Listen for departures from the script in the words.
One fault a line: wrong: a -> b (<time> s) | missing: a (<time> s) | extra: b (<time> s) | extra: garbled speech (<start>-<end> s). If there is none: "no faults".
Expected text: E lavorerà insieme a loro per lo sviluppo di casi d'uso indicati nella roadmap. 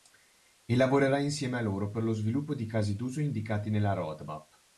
no faults